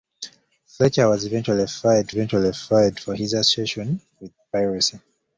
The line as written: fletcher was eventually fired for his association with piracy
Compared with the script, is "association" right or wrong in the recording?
right